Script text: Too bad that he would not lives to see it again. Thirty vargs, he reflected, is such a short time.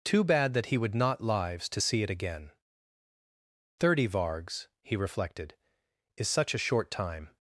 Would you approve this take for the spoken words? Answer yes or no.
yes